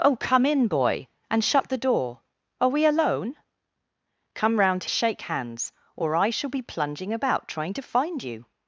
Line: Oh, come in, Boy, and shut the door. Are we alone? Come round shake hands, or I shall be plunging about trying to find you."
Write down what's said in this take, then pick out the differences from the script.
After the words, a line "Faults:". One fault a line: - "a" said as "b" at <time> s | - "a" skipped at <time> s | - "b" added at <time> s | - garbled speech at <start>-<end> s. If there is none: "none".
Oh, come in, Boy, and shut the door. Are we alone? Come round shake hands, or I shall be plunging about trying to find you."
Faults:
none